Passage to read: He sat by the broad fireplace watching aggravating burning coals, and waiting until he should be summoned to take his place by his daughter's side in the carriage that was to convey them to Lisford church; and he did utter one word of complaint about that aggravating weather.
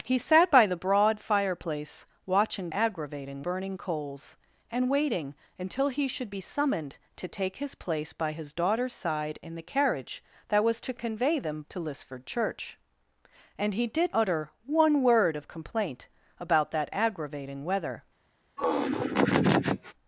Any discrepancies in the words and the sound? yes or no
yes